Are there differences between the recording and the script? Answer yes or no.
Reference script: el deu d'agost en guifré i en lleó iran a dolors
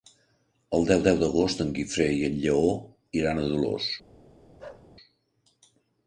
yes